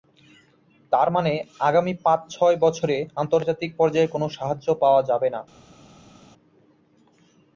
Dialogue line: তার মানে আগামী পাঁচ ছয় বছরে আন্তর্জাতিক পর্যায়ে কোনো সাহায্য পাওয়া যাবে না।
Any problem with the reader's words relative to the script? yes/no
no